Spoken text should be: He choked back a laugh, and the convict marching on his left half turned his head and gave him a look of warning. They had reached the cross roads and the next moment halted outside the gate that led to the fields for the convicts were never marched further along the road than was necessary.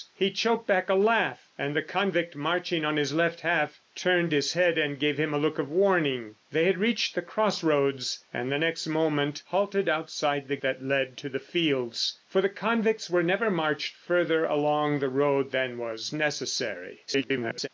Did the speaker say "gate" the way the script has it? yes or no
no